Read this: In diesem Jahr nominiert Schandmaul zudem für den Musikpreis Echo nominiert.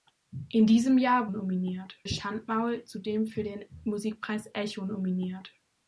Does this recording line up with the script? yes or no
yes